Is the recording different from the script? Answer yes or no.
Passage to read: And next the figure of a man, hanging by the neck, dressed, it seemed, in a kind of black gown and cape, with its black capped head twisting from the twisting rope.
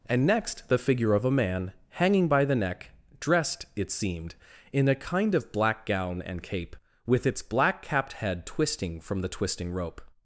no